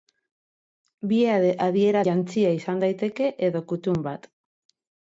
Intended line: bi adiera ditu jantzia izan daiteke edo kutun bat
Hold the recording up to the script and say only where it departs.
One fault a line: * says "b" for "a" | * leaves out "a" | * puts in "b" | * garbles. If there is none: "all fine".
* leaves out "ditu"